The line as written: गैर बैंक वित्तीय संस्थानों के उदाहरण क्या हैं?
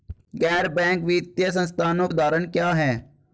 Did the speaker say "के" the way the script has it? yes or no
no